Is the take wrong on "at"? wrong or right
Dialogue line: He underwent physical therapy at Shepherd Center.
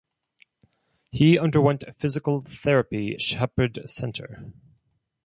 wrong